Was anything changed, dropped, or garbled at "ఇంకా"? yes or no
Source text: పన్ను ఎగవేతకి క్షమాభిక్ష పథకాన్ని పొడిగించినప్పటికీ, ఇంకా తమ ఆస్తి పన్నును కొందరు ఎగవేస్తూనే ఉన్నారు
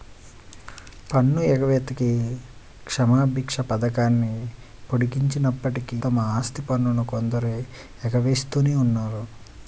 yes